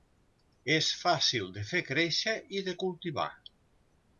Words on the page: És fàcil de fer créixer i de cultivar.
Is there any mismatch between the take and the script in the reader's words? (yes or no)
no